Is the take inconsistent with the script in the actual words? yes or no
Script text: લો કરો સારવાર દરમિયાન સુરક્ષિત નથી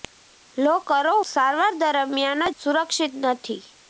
no